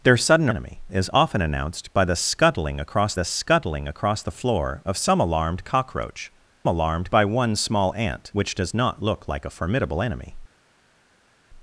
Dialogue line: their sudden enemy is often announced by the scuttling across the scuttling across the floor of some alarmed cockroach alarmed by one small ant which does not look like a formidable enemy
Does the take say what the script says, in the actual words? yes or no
yes